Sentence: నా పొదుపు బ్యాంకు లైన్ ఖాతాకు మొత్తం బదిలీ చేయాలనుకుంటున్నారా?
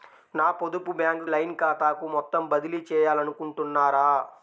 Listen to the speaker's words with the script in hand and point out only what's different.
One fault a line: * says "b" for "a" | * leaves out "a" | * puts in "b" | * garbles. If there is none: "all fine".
all fine